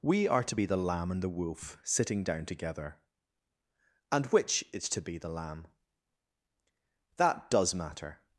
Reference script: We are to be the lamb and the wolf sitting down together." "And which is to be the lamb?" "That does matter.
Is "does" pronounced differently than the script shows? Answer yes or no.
no